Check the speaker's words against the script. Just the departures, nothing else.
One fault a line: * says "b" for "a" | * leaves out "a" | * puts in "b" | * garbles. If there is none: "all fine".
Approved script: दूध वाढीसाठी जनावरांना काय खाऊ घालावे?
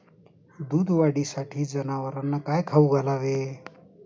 all fine